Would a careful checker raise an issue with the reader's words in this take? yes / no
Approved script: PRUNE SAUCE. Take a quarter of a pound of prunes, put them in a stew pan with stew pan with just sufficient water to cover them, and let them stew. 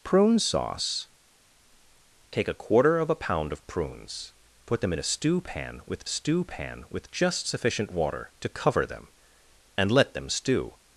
no